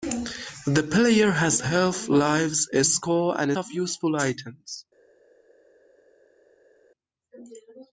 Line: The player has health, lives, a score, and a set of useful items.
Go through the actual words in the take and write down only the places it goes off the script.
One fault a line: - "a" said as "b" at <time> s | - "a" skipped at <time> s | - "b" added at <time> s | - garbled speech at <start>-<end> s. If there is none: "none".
- "set" skipped at 3.5 s